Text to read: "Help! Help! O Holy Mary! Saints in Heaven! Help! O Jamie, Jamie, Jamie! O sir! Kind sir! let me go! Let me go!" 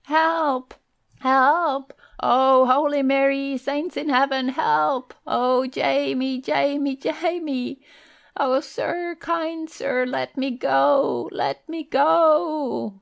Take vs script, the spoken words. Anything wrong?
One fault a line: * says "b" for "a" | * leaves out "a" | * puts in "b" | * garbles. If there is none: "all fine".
all fine